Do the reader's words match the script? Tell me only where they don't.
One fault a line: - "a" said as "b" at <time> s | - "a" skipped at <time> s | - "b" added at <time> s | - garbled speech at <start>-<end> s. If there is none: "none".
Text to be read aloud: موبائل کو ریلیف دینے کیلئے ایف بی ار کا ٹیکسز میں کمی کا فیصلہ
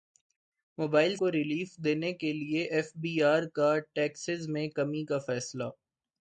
none